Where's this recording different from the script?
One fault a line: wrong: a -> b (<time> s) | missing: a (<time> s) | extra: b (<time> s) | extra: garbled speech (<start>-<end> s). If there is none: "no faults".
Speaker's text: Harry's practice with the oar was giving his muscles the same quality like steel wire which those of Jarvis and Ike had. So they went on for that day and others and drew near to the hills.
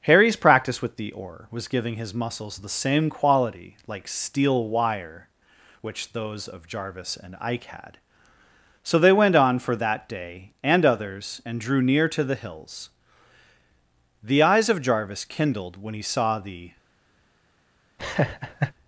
extra: The eyes of Jarvis kindled when he saw the (14.2 s)